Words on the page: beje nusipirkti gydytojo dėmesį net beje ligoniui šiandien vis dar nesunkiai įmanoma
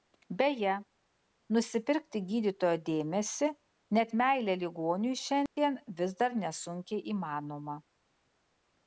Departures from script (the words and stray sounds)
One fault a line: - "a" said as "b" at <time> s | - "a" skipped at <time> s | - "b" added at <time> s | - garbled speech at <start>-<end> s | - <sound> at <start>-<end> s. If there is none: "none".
- "beje" said as "meilę" at 4.2 s
- dropout at 5.5-5.6 s